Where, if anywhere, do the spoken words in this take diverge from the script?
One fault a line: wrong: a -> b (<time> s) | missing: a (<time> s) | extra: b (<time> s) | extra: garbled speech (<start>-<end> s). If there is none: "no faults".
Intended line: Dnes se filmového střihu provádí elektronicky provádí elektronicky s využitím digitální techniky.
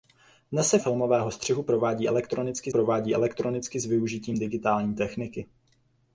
no faults